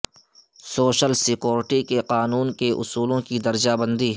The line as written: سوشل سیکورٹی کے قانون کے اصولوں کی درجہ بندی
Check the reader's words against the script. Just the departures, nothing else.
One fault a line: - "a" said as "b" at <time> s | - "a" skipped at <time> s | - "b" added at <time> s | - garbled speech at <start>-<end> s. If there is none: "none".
none